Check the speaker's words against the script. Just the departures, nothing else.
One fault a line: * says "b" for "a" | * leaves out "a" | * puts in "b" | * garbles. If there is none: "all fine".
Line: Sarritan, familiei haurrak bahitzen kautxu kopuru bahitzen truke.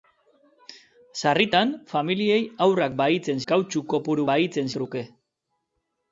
all fine